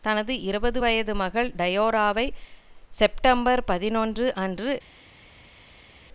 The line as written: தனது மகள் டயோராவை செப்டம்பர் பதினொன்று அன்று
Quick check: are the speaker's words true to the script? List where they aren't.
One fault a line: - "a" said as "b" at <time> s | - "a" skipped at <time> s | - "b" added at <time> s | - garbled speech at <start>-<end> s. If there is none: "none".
- "இருபது வயது" added at 0.4 s